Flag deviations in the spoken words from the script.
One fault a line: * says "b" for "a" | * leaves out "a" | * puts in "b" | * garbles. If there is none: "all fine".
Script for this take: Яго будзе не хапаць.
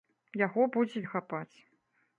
all fine